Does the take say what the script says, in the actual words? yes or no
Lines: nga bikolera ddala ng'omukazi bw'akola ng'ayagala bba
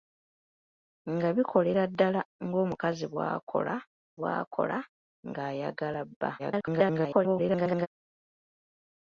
no